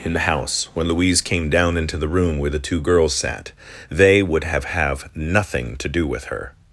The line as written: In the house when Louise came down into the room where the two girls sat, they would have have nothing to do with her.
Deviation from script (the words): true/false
false